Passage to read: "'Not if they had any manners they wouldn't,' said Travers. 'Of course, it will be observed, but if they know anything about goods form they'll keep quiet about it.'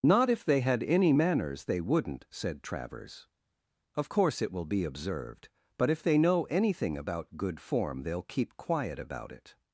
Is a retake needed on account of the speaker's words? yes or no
yes